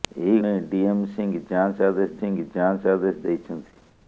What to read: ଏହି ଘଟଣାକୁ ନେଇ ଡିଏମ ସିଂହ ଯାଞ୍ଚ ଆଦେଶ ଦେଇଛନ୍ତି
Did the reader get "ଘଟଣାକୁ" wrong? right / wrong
wrong